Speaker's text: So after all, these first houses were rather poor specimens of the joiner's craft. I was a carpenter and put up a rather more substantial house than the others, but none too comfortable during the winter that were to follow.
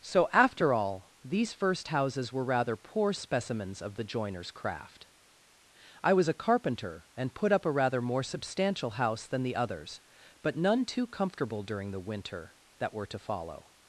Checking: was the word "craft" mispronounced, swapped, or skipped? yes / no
no